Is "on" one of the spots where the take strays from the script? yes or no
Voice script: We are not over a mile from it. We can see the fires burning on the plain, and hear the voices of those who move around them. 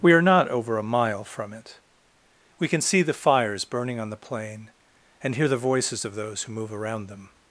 no